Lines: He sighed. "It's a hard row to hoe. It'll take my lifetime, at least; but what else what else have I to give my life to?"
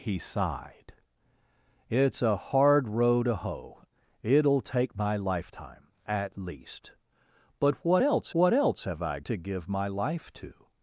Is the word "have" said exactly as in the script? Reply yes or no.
yes